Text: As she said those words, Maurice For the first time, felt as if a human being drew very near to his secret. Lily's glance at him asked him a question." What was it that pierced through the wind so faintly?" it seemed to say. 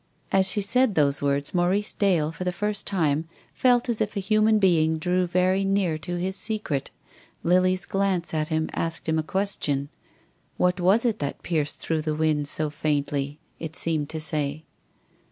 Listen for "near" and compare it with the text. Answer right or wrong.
right